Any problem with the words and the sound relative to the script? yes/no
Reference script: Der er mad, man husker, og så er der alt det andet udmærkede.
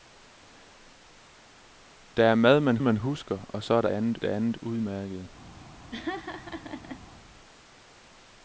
yes